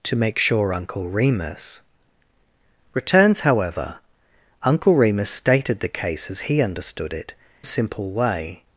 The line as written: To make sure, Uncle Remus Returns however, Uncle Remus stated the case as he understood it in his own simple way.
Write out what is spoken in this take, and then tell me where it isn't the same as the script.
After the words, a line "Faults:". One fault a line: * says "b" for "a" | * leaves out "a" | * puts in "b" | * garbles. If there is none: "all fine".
To make sure, Uncle Remus Returns however, Uncle Remus stated the case as he understood it simple way.
Faults:
* leaves out "in his own"